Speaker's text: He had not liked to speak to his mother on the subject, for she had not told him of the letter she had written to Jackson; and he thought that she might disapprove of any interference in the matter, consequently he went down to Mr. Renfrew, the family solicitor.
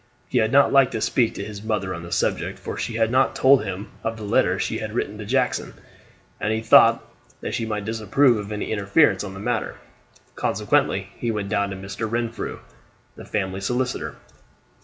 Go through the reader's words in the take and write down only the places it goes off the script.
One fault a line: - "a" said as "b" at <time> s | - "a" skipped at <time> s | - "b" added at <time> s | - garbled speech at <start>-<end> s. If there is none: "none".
none